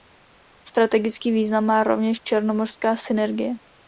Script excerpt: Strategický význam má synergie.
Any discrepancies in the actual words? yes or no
yes